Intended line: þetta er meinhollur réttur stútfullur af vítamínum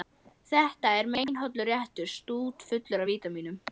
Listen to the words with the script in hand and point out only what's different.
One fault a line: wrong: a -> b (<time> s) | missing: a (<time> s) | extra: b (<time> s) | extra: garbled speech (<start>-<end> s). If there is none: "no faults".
no faults